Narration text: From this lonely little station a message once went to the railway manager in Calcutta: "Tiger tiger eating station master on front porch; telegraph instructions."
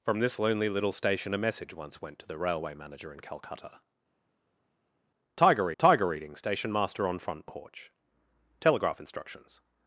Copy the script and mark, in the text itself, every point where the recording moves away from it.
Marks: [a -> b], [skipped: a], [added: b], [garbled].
From this lonely little station a message once went to the railway manager in Calcutta: "Tiger tiger eating station master on front porch; telegraph instructions."